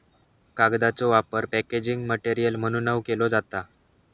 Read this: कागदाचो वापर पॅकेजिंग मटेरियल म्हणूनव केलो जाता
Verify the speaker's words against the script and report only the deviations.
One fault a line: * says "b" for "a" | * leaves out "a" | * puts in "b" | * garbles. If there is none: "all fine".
all fine